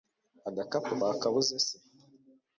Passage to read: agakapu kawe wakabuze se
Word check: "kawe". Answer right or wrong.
wrong